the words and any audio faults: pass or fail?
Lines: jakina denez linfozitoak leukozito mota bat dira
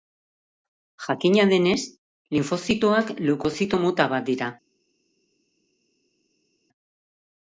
pass